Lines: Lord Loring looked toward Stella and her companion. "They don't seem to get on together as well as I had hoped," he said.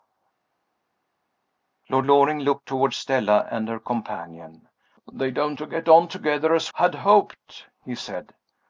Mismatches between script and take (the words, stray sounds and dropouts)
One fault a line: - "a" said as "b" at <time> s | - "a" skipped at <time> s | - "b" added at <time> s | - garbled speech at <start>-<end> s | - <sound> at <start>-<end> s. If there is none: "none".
- "seem" skipped at 5.6 s
- "well as I" skipped at 6.7 s